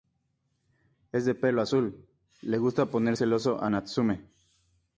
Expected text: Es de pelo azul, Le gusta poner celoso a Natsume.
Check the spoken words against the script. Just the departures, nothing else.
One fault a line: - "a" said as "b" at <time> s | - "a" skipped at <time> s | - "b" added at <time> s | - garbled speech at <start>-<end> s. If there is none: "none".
none